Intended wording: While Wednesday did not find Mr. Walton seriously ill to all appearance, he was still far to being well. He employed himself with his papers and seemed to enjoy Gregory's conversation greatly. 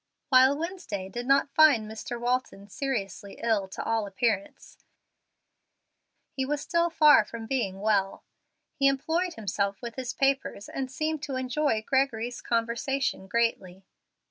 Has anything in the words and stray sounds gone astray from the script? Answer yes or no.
yes